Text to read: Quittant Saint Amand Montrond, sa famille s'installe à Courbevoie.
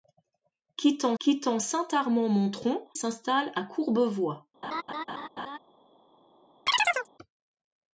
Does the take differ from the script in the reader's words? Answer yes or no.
yes